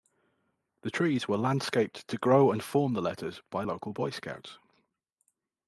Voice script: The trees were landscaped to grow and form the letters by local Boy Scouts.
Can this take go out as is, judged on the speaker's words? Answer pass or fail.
pass